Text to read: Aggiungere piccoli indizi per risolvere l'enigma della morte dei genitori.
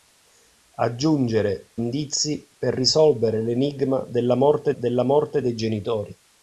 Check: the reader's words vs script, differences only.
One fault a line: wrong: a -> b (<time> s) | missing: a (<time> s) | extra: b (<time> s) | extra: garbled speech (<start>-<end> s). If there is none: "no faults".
missing: piccoli (1.7 s)
extra: della morte (4.8 s)